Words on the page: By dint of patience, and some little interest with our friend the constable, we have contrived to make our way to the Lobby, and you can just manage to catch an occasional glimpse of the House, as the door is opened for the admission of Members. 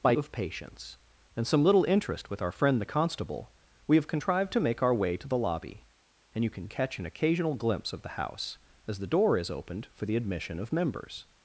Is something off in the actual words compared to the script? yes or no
yes